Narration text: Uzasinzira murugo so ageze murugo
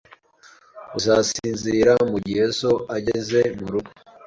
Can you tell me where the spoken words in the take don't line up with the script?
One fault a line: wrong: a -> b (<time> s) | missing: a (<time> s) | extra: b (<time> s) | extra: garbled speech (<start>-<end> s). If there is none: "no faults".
wrong: murugo -> mugihe (2.1 s)